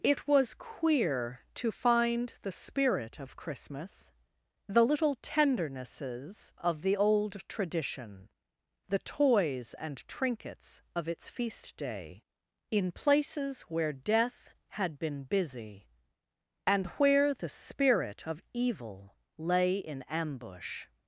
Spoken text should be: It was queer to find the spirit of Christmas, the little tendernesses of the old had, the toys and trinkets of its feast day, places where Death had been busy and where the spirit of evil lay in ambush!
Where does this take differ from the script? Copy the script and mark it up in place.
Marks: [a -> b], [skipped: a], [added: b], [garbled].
It was queer to find the spirit of Christmas, the little tendernesses of the old [had, -> tradition] the toys and trinkets of its feast day, [added: in] places where Death had been busy and where the spirit of evil lay in ambush!